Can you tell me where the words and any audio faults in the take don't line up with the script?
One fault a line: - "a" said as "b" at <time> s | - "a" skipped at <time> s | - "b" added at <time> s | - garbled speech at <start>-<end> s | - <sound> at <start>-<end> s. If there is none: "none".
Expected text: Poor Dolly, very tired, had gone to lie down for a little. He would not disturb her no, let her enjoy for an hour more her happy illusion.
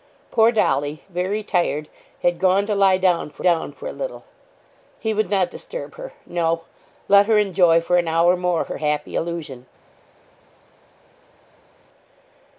- "down for" added at 3.4 s